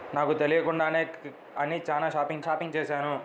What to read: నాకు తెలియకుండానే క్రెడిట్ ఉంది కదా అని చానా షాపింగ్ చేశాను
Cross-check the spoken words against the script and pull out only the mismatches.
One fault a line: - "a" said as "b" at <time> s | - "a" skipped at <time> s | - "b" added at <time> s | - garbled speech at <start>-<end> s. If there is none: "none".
- "క్రెడిట్ ఉంది కదా" skipped at 1.0 s
- "షాపింగ్" added at 2.4 s